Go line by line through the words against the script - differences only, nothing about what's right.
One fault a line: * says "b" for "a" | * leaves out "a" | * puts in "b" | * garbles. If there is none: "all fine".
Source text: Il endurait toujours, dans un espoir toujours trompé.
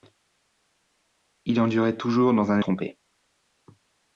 * leaves out "espoir toujours"